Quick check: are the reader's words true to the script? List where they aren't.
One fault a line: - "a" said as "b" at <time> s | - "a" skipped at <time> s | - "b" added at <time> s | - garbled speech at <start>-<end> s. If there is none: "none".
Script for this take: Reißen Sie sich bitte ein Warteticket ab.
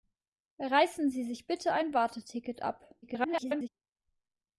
- garbled speech at 3.0-3.7 s